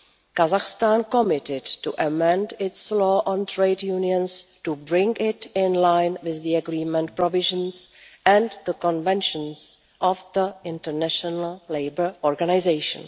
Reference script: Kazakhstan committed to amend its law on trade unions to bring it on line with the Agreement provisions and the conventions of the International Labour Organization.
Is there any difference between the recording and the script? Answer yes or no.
yes